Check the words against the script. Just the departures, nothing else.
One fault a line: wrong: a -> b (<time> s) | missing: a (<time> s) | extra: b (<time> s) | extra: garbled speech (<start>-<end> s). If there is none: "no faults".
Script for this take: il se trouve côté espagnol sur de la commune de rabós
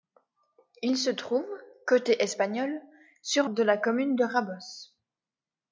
no faults